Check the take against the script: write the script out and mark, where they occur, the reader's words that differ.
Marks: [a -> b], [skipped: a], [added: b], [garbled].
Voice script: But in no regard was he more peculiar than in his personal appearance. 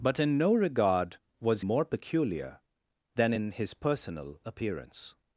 But in no regard was [skipped: he] more peculiar than in his personal appearance.